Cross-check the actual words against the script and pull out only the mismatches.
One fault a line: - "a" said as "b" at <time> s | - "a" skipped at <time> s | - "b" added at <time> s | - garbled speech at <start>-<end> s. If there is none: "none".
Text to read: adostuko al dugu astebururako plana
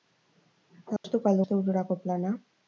- "dugu" skipped at 1.4 s